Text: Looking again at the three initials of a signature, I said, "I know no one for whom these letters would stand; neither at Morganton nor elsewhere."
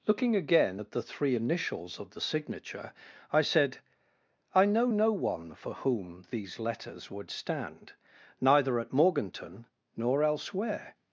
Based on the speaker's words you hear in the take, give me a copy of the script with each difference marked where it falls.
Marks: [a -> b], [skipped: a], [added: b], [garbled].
Looking again at the three initials of [a -> the] signature, I said, "I know no one for whom these letters would stand; neither at Morganton nor elsewhere."